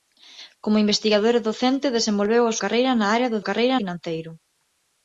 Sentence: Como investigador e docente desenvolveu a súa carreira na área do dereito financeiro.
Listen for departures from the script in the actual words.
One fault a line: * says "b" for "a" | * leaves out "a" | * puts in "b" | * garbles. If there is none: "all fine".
* leaves out "súa"
* says "carreira" for "dereito"